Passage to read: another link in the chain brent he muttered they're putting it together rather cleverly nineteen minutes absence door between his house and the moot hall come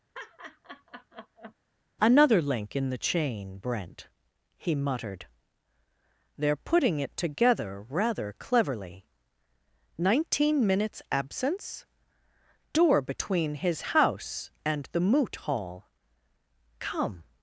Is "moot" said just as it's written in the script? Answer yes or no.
yes